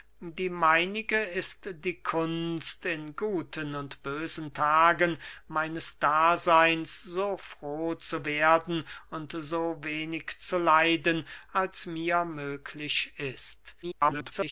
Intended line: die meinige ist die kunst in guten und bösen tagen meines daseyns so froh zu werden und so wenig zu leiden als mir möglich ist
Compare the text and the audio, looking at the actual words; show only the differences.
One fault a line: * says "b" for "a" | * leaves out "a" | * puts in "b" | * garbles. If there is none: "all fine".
* garbles